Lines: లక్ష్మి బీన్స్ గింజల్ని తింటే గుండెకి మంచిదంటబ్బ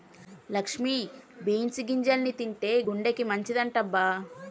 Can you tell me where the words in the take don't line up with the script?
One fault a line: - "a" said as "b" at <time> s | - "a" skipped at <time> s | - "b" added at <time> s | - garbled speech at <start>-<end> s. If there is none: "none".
none